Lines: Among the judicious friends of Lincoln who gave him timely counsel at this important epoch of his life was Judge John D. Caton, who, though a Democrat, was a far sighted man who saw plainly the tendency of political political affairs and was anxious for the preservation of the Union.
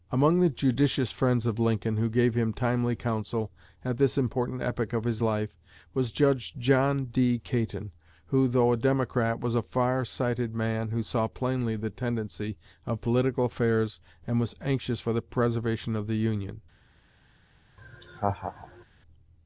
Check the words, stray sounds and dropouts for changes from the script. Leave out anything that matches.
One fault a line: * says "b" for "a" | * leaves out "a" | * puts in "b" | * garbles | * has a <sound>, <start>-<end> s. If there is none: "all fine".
* leaves out "political"
* has a laugh, 17.8-18.8 s